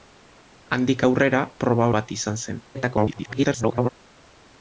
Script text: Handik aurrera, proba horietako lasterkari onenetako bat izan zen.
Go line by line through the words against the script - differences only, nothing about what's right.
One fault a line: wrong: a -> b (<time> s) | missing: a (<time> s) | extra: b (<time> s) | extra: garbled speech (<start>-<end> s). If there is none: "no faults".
missing: horietako lasterkari onenetako (1.9 s)
extra: garbled speech (2.7-3.9 s)